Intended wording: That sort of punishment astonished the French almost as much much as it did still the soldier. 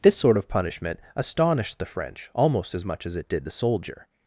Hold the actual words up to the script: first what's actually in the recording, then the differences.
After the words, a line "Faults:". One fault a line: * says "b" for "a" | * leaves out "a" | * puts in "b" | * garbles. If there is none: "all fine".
This sort of punishment astonished the French almost as much as it did the soldier.
Faults:
* says "This" for "That"
* leaves out "much"
* leaves out "still"